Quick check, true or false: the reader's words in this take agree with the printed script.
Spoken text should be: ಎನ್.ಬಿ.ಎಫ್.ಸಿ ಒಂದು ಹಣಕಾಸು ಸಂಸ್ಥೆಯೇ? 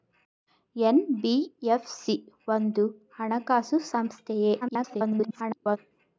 false